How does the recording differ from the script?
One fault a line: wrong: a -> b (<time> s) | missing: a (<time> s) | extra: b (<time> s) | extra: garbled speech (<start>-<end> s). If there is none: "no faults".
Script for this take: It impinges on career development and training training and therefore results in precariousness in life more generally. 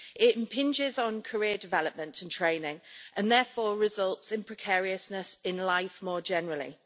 missing: training (2.8 s)